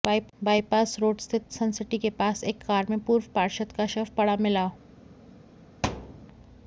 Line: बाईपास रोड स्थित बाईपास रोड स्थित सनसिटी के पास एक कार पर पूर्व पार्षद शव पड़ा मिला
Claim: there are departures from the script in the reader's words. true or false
true